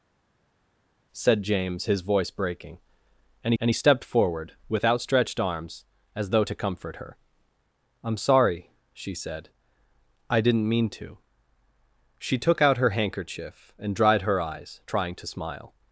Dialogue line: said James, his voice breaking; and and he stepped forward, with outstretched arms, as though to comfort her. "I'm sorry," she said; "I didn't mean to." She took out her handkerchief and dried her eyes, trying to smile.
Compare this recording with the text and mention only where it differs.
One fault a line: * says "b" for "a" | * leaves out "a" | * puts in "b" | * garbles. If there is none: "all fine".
all fine